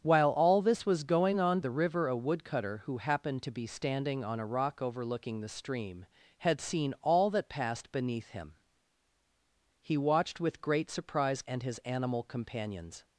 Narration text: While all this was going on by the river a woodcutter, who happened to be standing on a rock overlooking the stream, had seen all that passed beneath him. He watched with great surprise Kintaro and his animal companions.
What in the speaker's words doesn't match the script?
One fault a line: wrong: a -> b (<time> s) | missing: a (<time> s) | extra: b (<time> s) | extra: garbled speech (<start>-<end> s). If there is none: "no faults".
missing: by (1.6 s)
missing: Kintaro (11.4 s)